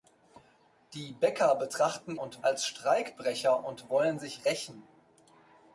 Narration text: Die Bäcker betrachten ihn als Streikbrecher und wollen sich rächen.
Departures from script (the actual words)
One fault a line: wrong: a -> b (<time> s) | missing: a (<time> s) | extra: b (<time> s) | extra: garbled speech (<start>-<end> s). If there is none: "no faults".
wrong: ihn -> und (2.2 s)